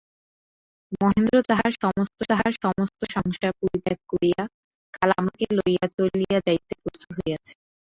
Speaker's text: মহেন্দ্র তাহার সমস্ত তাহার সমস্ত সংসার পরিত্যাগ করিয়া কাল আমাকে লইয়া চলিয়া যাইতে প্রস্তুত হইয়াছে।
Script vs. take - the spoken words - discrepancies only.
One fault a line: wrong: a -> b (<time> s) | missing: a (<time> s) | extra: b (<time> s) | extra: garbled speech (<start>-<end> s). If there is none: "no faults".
no faults